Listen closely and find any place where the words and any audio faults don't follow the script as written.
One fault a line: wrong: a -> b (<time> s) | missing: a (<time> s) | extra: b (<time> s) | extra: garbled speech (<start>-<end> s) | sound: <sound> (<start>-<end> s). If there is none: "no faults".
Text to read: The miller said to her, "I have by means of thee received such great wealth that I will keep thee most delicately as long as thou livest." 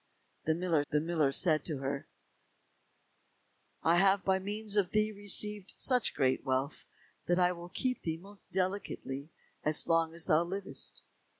extra: the miller (0.9 s)